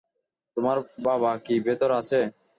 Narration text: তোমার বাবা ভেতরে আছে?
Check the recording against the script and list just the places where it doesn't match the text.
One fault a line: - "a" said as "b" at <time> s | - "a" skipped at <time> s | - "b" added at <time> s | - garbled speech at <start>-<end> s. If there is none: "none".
- "কি" added at 1.4 s